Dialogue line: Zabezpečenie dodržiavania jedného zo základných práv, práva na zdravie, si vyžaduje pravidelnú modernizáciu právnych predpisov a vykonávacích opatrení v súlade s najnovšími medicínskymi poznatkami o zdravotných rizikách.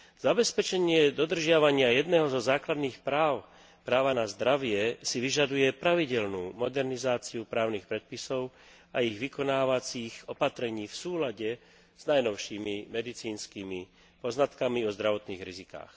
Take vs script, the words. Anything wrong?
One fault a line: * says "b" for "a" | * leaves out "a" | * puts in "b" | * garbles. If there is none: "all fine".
* puts in "ich"